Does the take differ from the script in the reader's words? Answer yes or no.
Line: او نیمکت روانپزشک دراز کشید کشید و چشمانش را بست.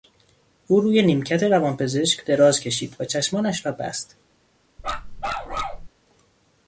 yes